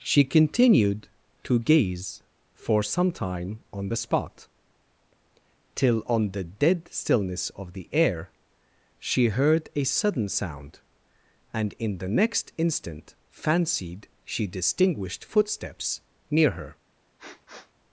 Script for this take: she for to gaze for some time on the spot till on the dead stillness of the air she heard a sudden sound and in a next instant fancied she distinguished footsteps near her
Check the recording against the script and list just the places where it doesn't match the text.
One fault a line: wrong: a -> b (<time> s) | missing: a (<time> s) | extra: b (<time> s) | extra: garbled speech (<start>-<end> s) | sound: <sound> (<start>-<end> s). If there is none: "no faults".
wrong: for -> continued (0.2 s)
wrong: a -> the (12.0 s)
sound: sniff (17.2-17.7 s)